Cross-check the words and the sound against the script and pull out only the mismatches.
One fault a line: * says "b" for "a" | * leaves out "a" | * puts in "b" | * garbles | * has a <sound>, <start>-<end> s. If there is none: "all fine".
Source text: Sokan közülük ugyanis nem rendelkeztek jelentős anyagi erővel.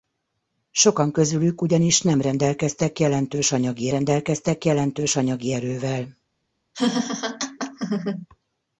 * puts in "rendelkeztek jelentős anyagi"
* has a laugh, 6.7-8.3 s